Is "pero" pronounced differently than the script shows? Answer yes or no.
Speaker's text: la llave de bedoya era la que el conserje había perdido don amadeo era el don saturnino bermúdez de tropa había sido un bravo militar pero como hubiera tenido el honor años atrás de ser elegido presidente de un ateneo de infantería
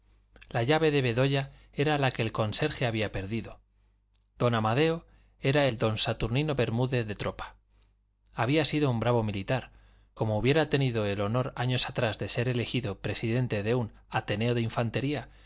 yes